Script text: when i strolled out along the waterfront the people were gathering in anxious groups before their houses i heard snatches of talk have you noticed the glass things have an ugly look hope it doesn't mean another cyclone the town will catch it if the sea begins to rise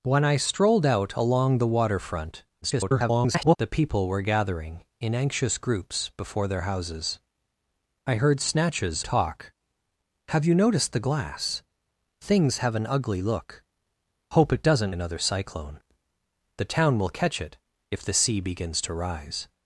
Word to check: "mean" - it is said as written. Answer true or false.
false